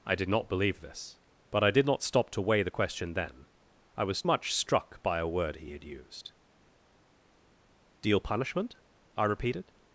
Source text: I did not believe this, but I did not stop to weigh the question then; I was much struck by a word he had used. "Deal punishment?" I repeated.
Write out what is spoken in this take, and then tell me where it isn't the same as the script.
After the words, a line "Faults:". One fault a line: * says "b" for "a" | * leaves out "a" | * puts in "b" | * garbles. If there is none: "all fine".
I did not believe this, but I did not stop to weigh the question then; I was much struck by a word he had used. "Deal punishment?" I repeated.
Faults:
all fine